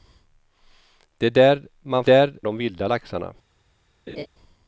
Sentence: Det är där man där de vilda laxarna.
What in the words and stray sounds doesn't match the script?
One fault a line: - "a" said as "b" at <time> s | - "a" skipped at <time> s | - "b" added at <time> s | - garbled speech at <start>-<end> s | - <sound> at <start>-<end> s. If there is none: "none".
- laugh at 4.1-4.3 s